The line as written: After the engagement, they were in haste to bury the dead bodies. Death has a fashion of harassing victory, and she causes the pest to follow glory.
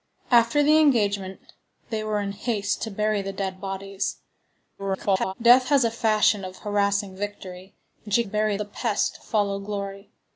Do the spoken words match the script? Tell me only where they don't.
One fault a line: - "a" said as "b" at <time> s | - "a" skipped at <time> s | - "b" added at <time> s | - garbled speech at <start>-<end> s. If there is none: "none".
- garbled speech at 4.8-5.3 s
- "causes" said as "bury" at 8.2 s